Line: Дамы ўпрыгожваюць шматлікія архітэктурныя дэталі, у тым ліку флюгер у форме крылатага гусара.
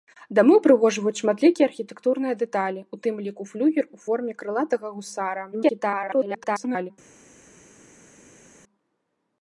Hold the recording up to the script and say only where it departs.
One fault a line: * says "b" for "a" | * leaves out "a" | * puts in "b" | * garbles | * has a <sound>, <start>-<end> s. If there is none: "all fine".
* garbles